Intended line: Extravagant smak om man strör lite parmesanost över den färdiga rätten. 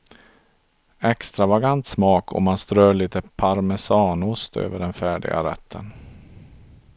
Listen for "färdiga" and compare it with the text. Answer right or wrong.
right